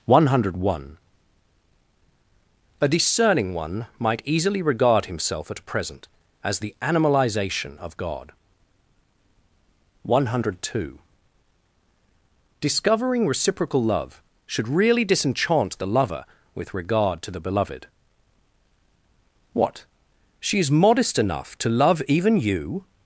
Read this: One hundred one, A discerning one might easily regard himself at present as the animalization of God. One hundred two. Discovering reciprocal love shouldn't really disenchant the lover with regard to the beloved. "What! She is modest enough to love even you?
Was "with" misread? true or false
false